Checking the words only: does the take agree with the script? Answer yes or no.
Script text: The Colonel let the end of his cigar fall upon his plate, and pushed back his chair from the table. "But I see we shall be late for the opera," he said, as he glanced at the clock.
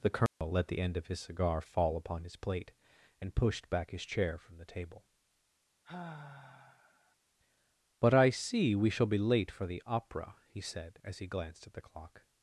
yes